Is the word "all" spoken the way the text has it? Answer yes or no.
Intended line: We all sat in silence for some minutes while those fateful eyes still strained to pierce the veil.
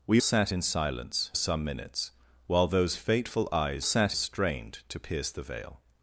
no